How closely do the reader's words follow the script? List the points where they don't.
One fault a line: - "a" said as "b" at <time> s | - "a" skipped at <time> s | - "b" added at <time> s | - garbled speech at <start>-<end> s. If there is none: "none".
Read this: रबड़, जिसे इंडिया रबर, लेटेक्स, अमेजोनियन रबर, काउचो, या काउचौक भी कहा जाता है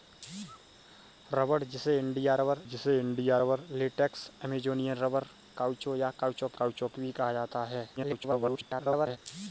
- "जिसे इंडिया रबर" added at 2.6 s
- "काउचौक" added at 6.6 s
- garbled speech at 8.0-9.2 s